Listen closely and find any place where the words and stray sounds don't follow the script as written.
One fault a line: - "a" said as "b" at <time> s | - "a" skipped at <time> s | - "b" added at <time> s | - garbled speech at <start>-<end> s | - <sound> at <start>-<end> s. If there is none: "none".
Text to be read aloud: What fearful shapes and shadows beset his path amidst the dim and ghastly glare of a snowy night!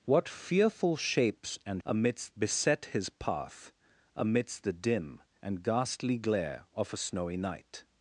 - "shadows" said as "amidst" at 1.9 s